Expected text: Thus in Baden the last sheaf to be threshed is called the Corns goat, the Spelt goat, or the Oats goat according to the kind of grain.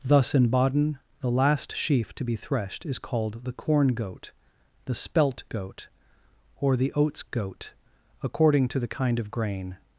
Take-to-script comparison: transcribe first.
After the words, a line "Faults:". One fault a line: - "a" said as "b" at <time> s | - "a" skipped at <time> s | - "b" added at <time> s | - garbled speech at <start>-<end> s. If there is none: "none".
Thus in Baden the last sheaf to be threshed is called the Corn goat, the Spelt goat, or the Oats goat according to the kind of grain.
Faults:
- "Corns" said as "Corn" at 3.5 s